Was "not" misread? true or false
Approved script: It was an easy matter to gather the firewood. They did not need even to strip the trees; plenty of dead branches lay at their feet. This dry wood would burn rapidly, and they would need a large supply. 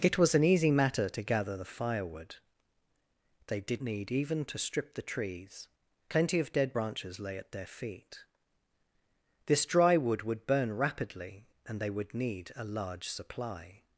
true